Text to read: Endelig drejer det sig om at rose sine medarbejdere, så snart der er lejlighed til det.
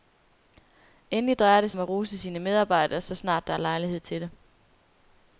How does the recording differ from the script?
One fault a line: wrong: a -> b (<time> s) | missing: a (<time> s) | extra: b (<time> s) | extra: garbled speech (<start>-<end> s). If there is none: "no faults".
missing: sig (1.7 s)